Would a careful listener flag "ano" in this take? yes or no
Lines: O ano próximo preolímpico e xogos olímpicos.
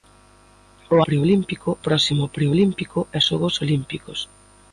yes